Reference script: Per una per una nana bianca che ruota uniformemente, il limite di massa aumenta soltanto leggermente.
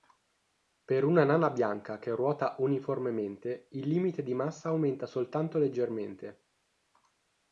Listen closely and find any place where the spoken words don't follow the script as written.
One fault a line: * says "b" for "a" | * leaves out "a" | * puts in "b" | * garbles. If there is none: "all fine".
* leaves out "per una"